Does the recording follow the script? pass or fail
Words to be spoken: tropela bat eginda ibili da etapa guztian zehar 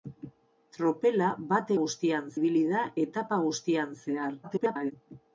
fail